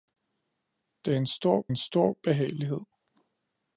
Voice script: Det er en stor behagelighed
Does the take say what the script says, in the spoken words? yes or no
no